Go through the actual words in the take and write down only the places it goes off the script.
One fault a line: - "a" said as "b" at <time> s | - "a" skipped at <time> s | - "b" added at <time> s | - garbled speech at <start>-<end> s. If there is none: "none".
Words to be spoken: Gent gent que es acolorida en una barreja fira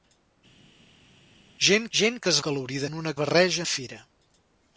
none